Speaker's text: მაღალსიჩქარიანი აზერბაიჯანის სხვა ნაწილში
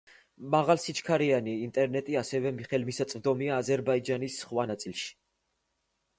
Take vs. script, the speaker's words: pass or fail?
fail